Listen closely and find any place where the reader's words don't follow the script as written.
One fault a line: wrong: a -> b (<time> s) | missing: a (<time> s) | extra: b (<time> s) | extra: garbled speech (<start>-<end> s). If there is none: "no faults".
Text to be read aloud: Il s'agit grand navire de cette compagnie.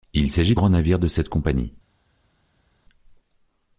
no faults